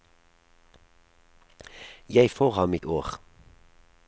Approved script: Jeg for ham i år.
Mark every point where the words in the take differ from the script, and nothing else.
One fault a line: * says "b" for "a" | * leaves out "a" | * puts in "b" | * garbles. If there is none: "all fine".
all fine